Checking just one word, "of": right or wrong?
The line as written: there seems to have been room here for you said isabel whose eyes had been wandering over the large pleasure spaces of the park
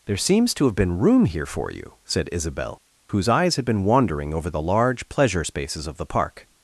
right